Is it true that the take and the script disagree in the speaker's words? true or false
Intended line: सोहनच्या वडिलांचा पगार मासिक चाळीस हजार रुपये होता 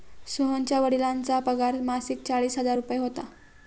false